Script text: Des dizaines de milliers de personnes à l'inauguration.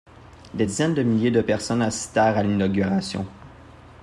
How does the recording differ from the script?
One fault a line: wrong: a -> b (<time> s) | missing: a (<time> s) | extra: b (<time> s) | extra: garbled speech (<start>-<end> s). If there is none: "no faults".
extra: assistèrent (1.8 s)